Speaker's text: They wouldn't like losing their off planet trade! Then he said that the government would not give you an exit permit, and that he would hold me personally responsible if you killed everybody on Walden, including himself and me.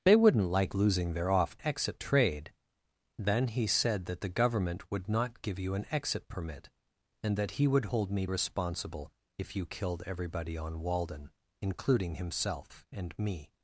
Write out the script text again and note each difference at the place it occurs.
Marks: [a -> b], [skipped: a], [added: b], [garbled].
They wouldn't like losing their off [planet -> exit] trade! Then he said that the government would not give you an exit permit, and that he would hold me [skipped: personally] responsible if you killed everybody on Walden, including himself and me.